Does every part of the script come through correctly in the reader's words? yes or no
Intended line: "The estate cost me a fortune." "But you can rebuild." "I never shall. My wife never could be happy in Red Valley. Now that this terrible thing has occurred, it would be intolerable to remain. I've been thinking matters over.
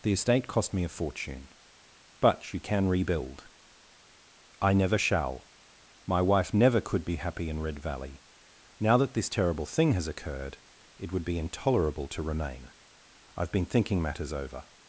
yes